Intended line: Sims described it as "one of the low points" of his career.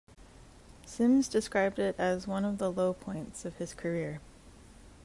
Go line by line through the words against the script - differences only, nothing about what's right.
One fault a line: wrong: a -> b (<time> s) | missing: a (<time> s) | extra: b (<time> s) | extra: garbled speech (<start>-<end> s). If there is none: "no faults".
no faults